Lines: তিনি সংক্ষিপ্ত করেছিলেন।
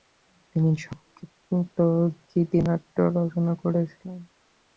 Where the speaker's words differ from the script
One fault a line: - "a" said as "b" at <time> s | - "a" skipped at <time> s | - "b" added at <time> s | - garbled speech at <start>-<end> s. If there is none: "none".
- "গীতিনাট্য রচনা" added at 2.3 s